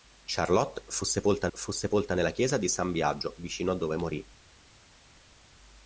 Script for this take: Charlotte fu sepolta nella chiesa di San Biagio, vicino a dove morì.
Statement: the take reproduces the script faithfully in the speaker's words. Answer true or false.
false